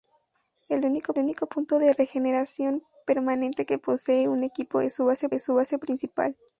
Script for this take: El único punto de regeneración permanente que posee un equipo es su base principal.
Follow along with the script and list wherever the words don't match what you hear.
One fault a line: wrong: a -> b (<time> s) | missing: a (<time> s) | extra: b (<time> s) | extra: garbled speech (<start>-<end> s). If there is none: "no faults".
extra: único (1.2 s)
extra: es su base (5.3 s)